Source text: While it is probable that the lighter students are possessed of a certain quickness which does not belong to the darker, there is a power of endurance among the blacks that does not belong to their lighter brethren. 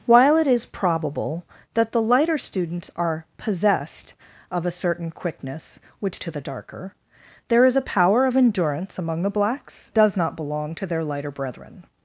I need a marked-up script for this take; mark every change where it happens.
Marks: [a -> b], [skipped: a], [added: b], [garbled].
While it is probable that the lighter students are possessed of a certain quickness which [skipped: does not belong] to the darker, there is a power of endurance among the blacks [skipped: that] does not belong to their lighter brethren.